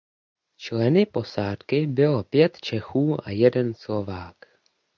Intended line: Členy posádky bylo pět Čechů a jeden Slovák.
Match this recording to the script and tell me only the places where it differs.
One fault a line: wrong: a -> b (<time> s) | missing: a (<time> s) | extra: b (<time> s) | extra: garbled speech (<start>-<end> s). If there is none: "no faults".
no faults